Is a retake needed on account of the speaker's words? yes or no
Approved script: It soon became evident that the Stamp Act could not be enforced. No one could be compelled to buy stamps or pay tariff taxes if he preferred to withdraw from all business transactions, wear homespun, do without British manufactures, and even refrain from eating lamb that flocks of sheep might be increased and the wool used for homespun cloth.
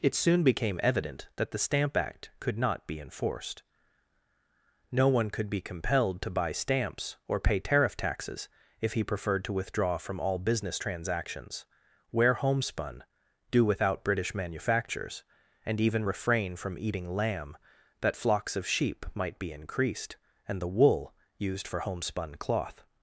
no